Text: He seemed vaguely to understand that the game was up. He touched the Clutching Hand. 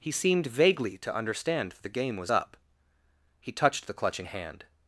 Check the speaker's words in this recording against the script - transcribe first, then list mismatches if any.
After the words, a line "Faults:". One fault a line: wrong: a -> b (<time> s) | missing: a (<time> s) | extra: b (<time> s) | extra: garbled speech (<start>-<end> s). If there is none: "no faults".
He seemed vaguely to understand the game was up. He touched the Clutching Hand.
Faults:
missing: that (1.8 s)